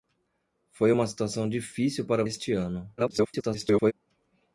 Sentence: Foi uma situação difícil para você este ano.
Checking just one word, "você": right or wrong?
wrong